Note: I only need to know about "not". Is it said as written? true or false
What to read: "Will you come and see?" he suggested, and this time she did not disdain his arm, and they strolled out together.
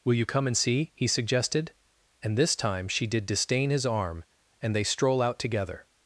false